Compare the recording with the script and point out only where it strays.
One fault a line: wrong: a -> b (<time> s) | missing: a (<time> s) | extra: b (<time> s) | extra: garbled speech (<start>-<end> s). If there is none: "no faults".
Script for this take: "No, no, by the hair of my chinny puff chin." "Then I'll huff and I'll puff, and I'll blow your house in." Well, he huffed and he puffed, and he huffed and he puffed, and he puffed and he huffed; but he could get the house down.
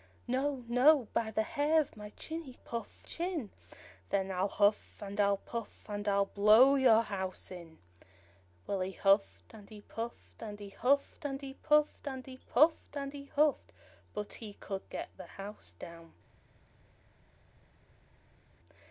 no faults